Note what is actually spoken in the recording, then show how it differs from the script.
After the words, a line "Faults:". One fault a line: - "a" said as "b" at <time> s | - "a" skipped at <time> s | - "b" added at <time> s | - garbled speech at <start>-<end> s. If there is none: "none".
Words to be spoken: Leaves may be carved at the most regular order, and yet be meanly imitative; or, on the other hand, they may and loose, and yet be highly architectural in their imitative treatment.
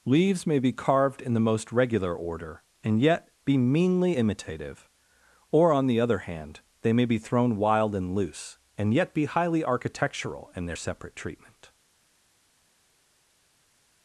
Leaves may be carved in the most regular order, and yet be meanly imitative; or, on the other hand, they may be thrown wild and loose, and yet be highly architectural in their separate treatment.
Faults:
- "at" said as "in" at 1.2 s
- "be thrown wild" added at 7.0 s
- "imitative" said as "separate" at 10.7 s